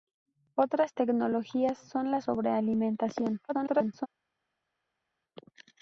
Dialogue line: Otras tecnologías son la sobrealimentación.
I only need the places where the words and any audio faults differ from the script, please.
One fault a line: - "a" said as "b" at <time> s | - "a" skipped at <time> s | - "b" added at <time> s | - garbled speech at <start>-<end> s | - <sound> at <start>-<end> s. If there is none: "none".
- garbled speech at 3.5-4.1 s